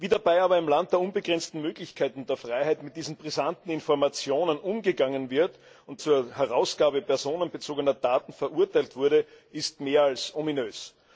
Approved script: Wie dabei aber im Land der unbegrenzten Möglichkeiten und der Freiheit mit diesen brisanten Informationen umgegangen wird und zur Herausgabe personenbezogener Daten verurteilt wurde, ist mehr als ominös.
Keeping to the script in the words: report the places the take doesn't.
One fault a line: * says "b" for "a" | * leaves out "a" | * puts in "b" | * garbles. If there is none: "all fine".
all fine